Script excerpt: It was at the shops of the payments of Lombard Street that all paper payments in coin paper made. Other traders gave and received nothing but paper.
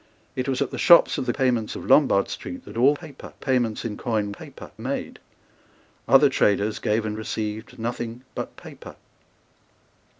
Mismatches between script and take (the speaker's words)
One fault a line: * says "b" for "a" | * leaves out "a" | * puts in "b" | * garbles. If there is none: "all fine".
all fine